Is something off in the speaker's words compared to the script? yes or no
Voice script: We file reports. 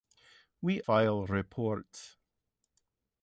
no